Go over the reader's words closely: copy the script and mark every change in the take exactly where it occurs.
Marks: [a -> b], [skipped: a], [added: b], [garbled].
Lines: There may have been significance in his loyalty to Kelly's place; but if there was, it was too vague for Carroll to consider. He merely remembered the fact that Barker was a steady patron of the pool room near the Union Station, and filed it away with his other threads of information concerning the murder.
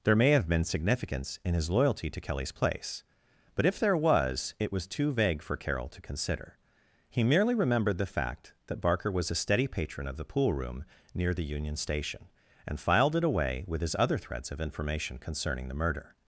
There may have been significance in his loyalty to Kelly's place; but if there was, it was too vague for Carroll to consider. He merely remembered the fact that Barker was a steady patron of the pool room near the Union Station, and filed it away with his other threads of information concerning the murder.